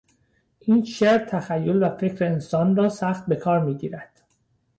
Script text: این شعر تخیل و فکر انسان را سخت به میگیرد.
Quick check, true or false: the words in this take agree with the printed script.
false